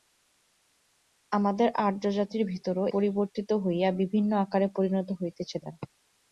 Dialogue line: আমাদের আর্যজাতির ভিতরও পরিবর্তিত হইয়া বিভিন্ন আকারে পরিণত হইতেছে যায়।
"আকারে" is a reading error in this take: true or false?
false